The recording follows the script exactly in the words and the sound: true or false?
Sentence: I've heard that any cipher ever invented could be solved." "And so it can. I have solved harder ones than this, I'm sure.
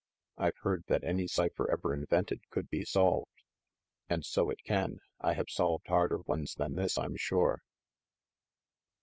true